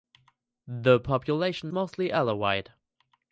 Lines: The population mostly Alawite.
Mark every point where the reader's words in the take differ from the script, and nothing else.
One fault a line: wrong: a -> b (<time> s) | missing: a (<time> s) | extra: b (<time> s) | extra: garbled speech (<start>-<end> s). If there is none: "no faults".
no faults